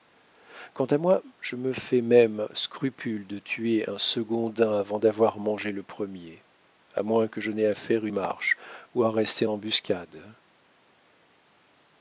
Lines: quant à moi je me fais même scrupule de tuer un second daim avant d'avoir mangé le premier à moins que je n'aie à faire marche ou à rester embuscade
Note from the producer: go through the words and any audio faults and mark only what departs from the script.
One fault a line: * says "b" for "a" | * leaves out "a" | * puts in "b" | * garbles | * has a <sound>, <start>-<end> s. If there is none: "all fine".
all fine